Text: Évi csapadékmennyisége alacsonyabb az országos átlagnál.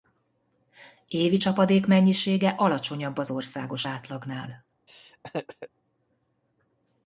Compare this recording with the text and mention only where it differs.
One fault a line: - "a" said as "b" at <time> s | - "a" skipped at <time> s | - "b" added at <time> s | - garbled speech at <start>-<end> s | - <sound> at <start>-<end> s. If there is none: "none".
- laugh at 4.9-5.7 s